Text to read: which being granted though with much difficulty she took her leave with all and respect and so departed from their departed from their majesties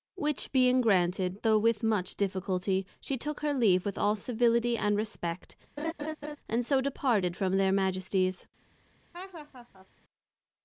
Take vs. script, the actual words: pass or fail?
fail